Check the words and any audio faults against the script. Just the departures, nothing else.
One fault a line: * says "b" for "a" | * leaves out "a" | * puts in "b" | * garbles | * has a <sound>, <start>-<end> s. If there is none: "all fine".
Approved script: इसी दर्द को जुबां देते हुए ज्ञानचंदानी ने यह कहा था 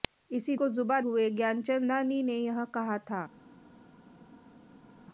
* leaves out "दर्द"
* leaves out "देते"